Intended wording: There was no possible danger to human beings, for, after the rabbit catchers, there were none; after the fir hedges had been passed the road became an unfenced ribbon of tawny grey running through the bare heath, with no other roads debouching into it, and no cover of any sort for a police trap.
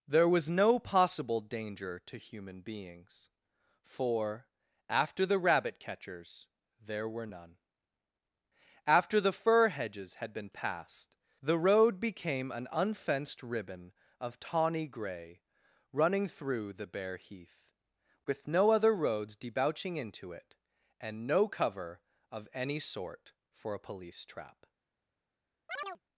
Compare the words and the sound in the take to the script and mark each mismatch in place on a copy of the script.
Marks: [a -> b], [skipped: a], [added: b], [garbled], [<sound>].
There was no possible danger to human beings, for, after the rabbit catchers, there were none; after the fir hedges had been passed the road became an unfenced ribbon of tawny grey running through the bare heath, with no other roads debouching into it, and no cover of any sort for a police trap. [chirp]